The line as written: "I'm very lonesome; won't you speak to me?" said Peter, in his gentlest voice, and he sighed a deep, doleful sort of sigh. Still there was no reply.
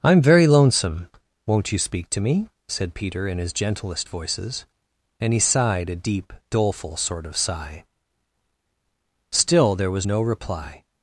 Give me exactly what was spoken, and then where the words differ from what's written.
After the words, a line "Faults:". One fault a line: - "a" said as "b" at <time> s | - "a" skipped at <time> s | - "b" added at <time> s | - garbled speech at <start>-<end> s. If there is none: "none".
"I'm very lonesome; won't you speak to me?" said Peter, in his gentlest voices, and he sighed a deep, doleful sort of sigh. Still there was no reply.
Faults:
- "voice" said as "voices" at 4.1 s